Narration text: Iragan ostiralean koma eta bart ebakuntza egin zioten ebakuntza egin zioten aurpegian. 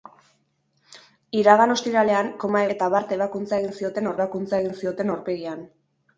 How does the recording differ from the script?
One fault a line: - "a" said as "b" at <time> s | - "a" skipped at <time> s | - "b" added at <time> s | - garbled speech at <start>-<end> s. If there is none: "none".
none